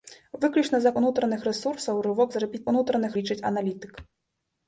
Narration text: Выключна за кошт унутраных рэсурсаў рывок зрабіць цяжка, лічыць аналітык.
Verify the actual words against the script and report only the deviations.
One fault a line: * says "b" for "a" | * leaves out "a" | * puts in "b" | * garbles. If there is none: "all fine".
* leaves out "кошт"
* says "унутраных" for "цяжка"